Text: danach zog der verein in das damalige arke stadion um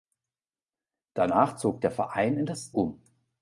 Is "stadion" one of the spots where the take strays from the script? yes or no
yes